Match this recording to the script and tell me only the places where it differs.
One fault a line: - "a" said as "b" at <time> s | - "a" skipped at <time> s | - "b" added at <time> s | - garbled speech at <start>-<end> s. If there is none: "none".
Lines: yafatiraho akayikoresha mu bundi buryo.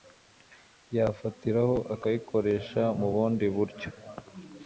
none